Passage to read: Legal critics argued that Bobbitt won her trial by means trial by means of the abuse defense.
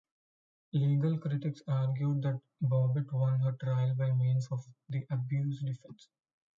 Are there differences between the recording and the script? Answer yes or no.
yes